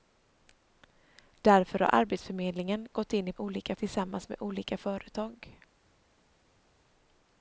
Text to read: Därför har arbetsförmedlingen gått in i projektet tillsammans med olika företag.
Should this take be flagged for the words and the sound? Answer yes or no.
yes